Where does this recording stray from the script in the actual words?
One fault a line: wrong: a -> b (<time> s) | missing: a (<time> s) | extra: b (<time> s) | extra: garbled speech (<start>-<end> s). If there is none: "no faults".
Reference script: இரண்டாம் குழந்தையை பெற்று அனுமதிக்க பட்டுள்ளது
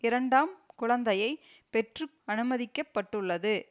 no faults